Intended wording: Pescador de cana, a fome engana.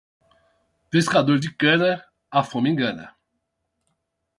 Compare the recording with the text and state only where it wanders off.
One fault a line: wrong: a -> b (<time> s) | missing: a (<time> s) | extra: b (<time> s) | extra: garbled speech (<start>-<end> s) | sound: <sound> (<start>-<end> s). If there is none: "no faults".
no faults